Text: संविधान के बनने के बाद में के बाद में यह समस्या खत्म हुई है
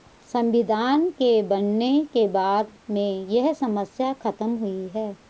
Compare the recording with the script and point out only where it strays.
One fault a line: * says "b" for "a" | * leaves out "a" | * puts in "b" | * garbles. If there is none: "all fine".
* leaves out "के बाद में"